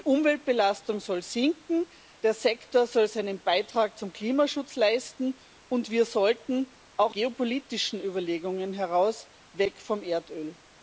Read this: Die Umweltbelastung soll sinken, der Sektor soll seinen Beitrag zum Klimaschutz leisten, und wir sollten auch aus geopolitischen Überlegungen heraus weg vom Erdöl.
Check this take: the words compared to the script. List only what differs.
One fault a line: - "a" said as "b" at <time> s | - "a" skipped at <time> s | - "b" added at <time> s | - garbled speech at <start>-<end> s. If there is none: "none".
- "aus" skipped at 7.1 s